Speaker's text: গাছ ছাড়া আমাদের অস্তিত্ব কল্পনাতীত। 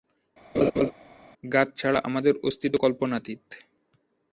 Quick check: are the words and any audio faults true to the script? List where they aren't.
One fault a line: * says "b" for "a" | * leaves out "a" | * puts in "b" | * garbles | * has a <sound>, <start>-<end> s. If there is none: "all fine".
* has a laugh, 0.5-0.9 s